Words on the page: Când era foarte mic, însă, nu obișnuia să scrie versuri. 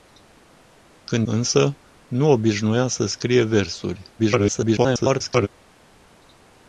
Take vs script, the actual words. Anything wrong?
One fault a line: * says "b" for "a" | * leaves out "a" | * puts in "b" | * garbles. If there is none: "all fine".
* leaves out "era foarte mic"
* garbles